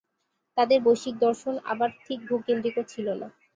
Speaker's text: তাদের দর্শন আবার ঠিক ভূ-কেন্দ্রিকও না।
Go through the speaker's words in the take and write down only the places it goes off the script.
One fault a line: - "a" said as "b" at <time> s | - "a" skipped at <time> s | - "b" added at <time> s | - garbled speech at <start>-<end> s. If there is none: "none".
- "বৈশ্বিক" added at 0.8 s
- "ছিল" added at 2.9 s